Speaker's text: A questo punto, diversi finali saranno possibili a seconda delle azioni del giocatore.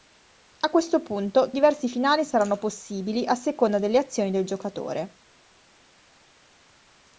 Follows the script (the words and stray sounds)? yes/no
yes